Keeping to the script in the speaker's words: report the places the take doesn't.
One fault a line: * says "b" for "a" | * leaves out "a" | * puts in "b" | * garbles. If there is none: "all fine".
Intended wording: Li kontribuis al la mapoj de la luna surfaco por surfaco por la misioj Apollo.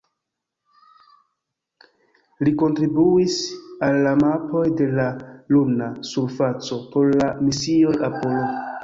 * leaves out "surfaco por"